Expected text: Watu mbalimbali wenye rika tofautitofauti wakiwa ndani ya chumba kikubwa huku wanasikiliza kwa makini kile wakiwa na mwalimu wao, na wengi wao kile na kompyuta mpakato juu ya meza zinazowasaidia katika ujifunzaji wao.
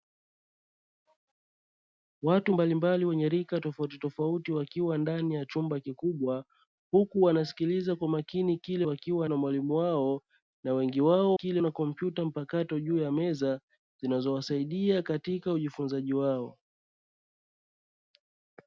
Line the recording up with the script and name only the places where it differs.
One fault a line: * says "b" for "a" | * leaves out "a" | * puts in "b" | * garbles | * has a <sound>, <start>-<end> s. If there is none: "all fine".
all fine